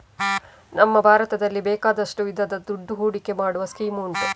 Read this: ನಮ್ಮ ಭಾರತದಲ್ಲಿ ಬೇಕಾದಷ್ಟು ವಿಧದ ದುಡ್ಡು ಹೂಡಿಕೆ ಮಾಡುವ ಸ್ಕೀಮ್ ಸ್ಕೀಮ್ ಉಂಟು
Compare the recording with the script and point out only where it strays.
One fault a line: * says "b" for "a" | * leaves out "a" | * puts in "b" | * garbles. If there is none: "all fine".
* leaves out "ಸ್ಕೀಮ್"